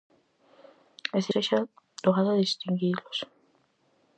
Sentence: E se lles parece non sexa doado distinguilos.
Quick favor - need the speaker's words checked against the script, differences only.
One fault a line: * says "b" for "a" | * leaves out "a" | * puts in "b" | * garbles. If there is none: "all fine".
* leaves out "lles parece non"